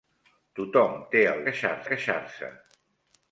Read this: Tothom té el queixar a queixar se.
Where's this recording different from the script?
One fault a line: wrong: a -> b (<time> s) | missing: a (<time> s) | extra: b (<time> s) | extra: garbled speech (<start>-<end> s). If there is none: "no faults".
no faults